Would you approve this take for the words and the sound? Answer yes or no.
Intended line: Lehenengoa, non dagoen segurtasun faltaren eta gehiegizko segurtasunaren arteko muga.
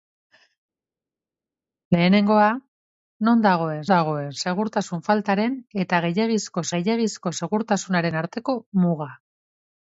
no